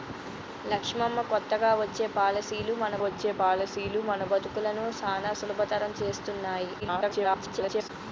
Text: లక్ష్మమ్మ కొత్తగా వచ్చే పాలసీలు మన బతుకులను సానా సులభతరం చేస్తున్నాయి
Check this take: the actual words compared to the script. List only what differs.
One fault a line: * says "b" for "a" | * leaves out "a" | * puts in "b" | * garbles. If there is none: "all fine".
* puts in "వచ్చే పాలసీలు మన"
* garbles